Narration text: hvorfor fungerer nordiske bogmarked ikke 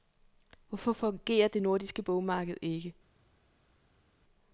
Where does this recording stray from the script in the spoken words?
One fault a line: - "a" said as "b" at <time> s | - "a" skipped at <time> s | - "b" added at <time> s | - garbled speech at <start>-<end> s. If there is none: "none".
- "det" added at 1.5 s